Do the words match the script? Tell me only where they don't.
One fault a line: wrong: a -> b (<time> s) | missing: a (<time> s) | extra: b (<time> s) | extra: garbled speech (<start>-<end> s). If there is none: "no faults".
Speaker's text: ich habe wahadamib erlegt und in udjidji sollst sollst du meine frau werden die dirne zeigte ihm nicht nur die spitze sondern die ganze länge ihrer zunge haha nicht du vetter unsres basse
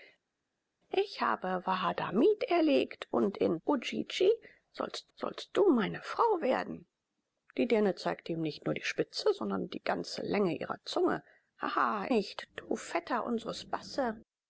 no faults